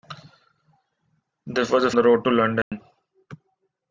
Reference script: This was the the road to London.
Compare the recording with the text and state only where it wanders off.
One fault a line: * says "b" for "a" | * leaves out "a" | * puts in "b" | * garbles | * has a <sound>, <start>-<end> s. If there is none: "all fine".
* has a dropout, 2.6-2.7 s